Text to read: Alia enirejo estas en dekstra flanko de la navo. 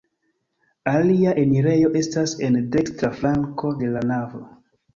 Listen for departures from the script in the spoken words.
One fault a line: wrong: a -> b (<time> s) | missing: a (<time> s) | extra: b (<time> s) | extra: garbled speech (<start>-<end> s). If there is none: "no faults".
no faults